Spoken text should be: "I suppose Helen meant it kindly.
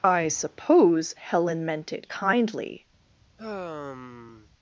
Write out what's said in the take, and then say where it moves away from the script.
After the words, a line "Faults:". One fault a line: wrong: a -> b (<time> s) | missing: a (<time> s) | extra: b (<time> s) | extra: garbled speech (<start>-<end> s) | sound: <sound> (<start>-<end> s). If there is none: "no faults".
"I suppose Helen meant it kindly.
Faults:
sound: sigh (3.4-4.5 s)